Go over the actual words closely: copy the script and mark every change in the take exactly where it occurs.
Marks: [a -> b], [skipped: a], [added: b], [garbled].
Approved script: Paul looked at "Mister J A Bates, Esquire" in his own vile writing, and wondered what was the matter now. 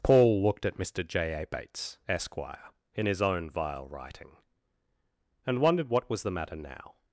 Paul looked at "Mister J A Bates, Esquire" in his own vile writing, and wondered what was the matter now.